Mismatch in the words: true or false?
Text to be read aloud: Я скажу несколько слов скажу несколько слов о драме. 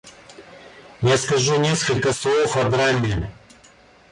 true